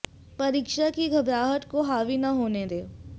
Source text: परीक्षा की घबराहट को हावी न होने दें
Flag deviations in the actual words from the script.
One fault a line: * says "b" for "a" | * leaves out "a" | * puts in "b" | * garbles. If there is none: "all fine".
all fine